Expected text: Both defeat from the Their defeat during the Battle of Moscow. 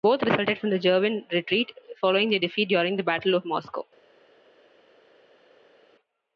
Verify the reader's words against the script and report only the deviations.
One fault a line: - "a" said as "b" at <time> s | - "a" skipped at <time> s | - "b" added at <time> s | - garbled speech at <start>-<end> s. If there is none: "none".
- "defeat" said as "resulted" at 0.2 s
- "German retreat following" added at 0.8 s